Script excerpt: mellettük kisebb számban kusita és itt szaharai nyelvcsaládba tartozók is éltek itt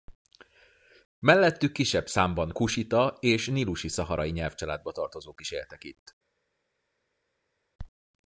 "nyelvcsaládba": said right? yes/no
yes